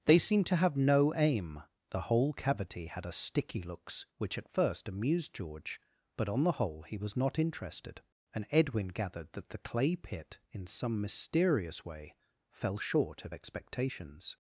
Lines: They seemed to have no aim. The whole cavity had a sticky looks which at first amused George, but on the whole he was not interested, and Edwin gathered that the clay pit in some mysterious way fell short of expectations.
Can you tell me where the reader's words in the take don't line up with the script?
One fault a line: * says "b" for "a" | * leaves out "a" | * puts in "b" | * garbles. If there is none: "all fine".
all fine